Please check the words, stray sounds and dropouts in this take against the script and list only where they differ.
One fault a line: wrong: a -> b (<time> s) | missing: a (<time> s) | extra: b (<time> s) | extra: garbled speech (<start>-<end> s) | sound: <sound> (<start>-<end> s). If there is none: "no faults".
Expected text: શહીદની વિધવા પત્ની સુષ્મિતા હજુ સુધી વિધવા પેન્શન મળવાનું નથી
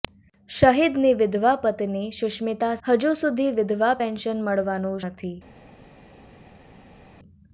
no faults